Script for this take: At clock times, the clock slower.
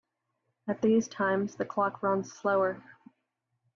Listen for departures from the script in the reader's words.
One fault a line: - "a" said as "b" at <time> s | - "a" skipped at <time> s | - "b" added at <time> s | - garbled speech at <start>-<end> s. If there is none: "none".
- "clock" said as "these" at 0.8 s
- "runs" added at 2.0 s